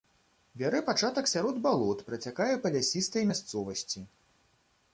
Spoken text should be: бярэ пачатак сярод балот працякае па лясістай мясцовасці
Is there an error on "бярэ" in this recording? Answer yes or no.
no